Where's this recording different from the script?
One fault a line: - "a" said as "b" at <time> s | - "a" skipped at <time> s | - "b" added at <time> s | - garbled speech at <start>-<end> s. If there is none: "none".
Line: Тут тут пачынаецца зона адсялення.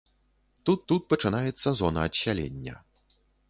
none